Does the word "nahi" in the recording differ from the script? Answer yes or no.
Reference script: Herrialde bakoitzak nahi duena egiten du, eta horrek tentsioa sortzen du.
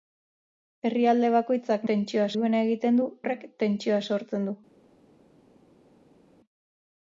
yes